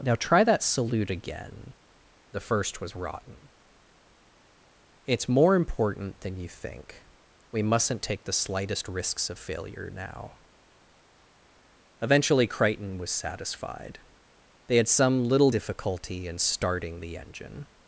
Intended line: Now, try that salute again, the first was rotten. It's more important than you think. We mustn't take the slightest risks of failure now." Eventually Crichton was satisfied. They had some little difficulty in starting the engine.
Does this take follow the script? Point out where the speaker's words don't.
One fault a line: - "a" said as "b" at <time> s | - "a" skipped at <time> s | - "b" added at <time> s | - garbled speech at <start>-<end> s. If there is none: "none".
none